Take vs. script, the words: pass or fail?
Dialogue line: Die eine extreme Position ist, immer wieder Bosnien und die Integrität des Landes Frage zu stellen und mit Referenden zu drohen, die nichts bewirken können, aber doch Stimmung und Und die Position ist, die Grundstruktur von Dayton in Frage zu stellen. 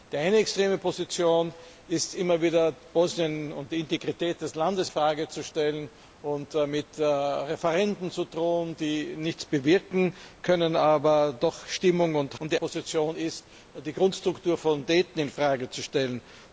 pass